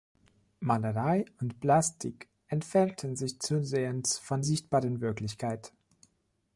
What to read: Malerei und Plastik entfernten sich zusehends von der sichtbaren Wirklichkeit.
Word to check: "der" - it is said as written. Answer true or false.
false